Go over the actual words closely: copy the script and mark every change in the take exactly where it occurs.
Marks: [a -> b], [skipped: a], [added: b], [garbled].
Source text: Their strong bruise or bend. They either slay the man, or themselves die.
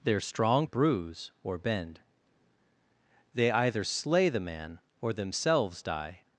Their strong bruise or bend. They either slay the man, or themselves die.